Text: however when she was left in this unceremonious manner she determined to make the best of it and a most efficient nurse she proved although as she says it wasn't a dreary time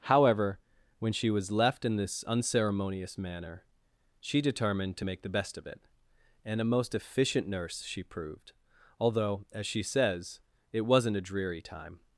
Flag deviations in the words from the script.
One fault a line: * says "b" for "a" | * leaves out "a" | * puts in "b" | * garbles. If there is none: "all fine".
all fine